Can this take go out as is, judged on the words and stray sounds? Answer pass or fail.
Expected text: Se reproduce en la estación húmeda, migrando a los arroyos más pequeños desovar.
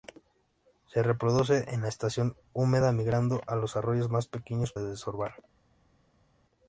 pass